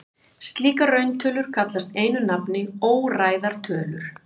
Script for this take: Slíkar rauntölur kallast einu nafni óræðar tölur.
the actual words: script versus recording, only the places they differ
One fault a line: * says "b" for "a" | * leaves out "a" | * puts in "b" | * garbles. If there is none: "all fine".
all fine